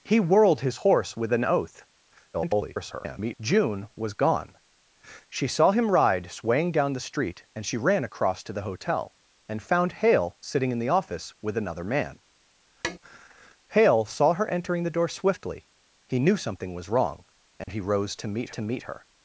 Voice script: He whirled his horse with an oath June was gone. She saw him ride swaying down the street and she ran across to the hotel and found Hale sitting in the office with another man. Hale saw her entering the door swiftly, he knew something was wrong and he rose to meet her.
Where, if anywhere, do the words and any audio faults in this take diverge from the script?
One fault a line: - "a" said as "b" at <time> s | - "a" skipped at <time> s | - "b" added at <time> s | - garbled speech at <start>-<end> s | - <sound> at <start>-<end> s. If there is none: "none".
- garbled speech at 2.3-3.4 s
- tap at 12.8-13.0 s
- dropout at 17.6-17.7 s
- "to meet" added at 18.5 s